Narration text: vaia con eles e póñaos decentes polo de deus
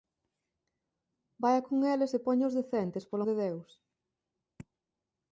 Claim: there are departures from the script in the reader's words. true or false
false